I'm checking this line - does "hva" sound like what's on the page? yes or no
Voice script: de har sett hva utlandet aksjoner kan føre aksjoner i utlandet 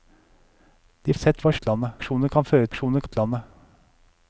yes